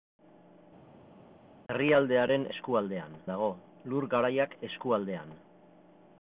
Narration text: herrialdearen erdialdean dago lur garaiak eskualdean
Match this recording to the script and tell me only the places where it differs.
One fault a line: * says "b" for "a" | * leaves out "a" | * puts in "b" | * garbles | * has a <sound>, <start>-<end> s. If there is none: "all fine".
* says "eskualdean" for "erdialdean"